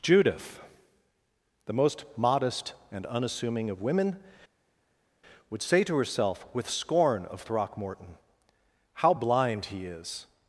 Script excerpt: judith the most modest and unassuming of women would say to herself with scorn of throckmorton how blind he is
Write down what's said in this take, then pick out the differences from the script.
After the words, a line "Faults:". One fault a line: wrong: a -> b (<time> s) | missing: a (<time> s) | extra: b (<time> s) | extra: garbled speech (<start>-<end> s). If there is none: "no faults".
judith the most modest and unassuming of women would say to herself with scorn of throckmorton how blind he is
Faults:
no faults